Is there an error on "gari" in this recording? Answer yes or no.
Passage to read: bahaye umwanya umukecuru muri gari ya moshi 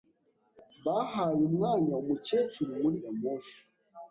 yes